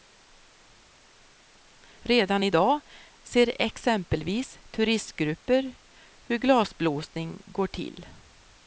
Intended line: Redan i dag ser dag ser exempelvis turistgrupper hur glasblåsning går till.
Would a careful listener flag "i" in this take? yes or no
no